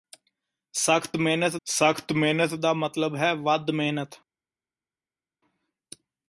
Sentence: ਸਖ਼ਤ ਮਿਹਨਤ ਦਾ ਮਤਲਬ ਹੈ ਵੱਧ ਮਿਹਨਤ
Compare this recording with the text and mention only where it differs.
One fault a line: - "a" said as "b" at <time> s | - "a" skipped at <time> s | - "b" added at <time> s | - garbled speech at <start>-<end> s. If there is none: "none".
- "ਸਖ਼ਤ ਮਿਹਨਤ" added at 1.7 s